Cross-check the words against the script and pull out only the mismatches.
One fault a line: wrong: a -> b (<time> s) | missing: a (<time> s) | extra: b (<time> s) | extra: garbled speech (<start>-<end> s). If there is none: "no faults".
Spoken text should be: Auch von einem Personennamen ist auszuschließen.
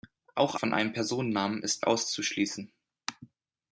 no faults